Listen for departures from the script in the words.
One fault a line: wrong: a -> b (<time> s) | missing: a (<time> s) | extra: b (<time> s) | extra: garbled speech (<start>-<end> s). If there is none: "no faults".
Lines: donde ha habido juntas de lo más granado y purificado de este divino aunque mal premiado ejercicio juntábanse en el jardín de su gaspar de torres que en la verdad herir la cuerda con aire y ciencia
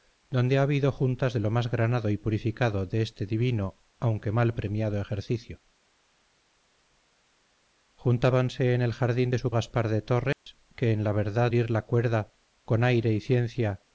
no faults